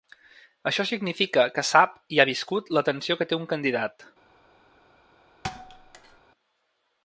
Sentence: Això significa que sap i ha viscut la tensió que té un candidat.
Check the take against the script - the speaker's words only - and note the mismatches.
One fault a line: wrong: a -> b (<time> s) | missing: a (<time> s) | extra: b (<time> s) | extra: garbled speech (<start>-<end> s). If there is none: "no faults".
no faults